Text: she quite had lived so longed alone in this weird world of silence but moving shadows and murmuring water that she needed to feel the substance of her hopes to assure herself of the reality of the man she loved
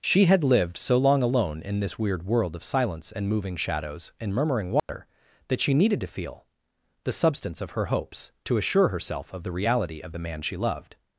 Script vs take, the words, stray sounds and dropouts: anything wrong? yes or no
yes